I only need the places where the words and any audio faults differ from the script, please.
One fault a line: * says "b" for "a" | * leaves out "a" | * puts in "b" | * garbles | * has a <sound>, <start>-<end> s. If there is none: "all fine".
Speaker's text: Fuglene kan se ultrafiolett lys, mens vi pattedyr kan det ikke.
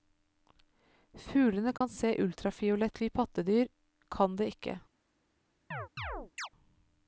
* has a dropout, 1.8-1.8 s
* leaves out "lys mens"
* has a chirp, 5.7-6.5 s